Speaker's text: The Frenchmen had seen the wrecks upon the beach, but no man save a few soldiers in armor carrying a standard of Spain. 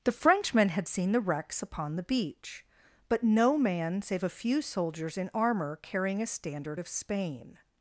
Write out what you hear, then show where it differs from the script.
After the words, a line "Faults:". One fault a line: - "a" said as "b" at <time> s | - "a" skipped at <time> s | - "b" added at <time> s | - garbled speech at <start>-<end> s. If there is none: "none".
The Frenchmen had seen the wrecks upon the beach, but no man save a few soldiers in armor carrying a standard of Spain.
Faults:
none